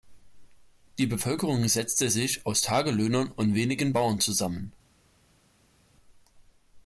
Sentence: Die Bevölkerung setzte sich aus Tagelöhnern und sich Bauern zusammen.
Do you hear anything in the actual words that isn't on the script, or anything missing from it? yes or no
yes